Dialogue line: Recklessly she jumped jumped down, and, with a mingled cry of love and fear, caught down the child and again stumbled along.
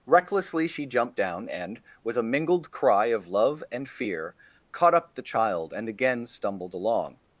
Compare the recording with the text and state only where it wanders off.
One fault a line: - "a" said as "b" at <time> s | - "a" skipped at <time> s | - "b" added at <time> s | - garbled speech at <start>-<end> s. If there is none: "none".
- "jumped" skipped at 1.1 s
- "down" said as "up" at 4.9 s